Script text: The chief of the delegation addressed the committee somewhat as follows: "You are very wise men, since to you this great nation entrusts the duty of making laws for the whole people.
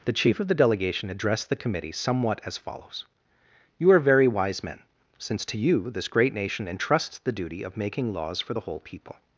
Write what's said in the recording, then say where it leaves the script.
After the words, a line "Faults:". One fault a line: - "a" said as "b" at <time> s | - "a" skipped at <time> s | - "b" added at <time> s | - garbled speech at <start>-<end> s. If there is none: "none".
The chief of the delegation addressed the committee somewhat as follows: "You are very wise men, since to you this great nation entrusts the duty of making laws for the whole people.
Faults:
none